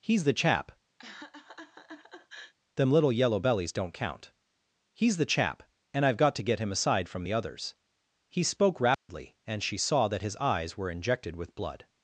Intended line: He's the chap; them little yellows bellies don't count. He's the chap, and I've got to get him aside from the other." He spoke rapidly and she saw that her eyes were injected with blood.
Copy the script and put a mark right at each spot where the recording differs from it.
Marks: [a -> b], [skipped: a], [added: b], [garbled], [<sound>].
He's the chap; [laugh] them little [yellows -> yellow] bellies don't count. He's the chap, and I've got to get him aside from the [other." -> others] He spoke rapidly [dropout] and she saw that [her -> his] eyes were injected with blood.